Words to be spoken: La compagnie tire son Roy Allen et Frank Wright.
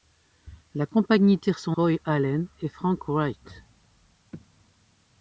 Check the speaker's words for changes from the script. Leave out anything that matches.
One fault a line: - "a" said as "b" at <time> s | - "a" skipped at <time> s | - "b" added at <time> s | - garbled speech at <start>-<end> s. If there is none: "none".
none